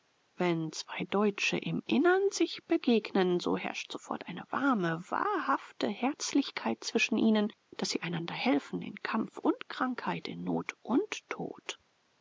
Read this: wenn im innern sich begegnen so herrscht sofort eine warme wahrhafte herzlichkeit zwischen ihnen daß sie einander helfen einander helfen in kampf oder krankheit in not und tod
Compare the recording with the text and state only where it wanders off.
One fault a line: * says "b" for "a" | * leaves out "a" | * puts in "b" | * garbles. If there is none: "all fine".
* puts in "zwei deutsche"
* leaves out "einander helfen"
* says "und" for "oder"